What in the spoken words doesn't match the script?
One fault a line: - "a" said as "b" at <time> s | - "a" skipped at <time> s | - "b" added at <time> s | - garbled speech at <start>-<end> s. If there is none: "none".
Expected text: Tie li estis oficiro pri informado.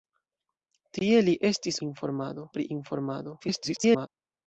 - "oficiro" said as "informado" at 1.9 s
- garbled speech at 3.4-4.1 s